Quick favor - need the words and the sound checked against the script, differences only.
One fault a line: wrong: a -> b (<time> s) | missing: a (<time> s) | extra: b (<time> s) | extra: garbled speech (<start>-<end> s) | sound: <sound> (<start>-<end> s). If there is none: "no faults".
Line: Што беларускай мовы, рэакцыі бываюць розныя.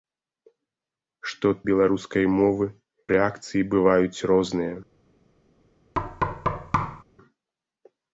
sound: thud (5.9-7.0 s)